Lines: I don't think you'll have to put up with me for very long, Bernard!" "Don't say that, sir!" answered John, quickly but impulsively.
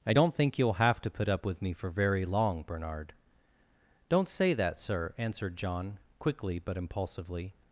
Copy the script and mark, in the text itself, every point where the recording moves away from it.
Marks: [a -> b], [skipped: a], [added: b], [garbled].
I don't think you'll have to put up with me for very long, Bernard!" "Don't say that, sir!" answered John, quickly but impulsively.